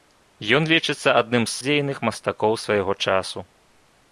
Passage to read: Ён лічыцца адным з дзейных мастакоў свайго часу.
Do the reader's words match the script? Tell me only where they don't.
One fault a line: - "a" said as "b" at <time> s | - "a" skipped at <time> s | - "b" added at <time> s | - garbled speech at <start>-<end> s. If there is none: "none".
none